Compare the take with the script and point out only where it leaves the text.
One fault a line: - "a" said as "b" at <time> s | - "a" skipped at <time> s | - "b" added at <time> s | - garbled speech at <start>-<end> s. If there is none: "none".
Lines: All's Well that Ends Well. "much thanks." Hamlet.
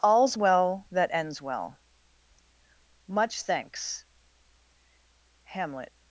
none